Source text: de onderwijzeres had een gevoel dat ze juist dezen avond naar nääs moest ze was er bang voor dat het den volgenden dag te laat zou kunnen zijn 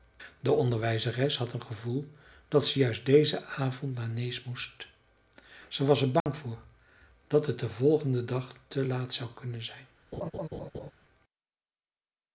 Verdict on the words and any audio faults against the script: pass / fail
fail